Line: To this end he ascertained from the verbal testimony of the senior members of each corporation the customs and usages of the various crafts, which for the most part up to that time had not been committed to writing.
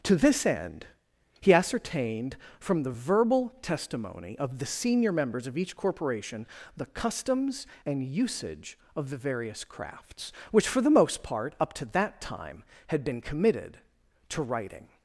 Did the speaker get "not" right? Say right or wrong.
wrong